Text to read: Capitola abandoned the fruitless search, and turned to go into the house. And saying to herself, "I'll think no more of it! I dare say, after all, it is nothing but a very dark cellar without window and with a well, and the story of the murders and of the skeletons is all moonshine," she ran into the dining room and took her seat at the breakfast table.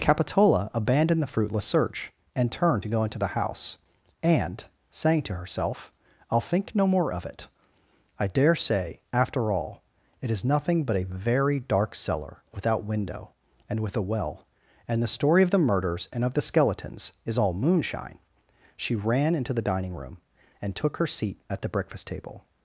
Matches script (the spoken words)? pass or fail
pass